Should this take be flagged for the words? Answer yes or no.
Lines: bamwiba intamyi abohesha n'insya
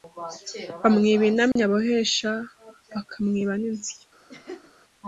yes